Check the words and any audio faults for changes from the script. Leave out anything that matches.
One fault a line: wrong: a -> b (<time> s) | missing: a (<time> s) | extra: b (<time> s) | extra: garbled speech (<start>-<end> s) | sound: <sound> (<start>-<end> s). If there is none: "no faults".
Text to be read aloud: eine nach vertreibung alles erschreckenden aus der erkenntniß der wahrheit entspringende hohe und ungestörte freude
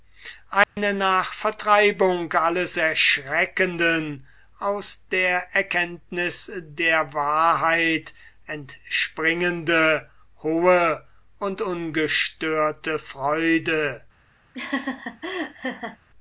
sound: dropout (0.6-0.8 s)
sound: laugh (14.5-16.0 s)